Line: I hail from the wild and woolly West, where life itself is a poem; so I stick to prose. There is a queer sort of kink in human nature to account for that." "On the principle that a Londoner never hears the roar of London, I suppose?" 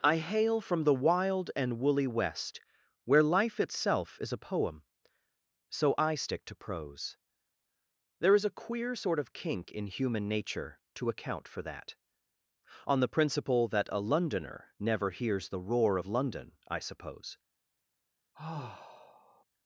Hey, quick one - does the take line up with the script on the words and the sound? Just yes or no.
no